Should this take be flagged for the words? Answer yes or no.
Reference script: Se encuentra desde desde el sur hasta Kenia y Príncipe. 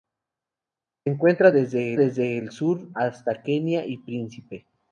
no